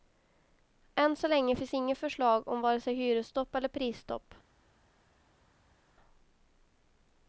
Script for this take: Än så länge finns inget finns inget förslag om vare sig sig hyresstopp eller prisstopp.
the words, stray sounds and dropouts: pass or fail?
fail